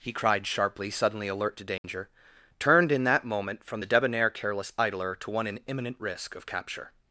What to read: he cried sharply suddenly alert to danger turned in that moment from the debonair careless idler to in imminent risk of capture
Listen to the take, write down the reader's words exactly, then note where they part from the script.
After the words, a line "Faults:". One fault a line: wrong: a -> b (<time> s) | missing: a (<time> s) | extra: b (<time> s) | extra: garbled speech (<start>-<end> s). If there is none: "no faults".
he cried sharply suddenly alert to danger turned in that moment from the debonair careless idler to one in imminent risk of capture
Faults:
extra: one (5.3 s)